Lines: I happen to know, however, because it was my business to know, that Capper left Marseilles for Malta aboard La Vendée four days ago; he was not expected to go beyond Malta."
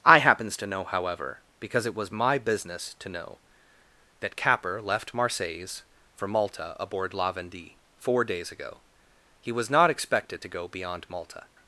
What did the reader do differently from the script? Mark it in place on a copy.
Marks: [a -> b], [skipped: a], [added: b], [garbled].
I [happen -> happens] to know, however, because it was my business to know, that Capper left Marseilles for Malta aboard La Vendée four days ago; he was not expected to go beyond Malta."